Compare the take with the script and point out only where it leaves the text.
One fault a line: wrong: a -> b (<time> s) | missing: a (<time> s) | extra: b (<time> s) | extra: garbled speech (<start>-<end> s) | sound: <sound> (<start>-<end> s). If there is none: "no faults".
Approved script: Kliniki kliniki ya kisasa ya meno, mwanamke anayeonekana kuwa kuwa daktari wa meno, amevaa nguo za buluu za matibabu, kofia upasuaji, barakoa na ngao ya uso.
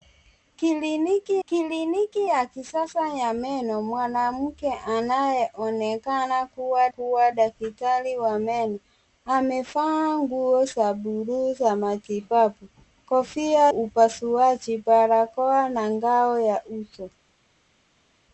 no faults